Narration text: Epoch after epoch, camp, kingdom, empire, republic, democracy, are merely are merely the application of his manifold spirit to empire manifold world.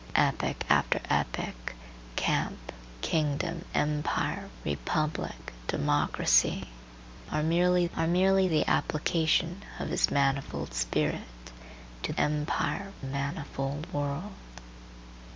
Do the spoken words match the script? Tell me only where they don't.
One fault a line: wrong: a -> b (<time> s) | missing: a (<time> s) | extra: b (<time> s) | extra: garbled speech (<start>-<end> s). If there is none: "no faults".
no faults